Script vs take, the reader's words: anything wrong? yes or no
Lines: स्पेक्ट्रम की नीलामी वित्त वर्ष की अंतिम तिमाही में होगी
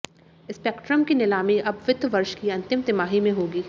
yes